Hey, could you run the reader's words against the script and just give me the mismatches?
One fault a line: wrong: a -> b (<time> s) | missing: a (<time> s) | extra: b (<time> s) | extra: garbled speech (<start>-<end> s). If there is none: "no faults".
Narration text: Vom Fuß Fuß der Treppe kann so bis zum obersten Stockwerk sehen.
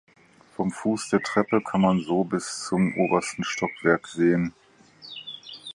missing: Fuß (1.1 s)
extra: man (1.8 s)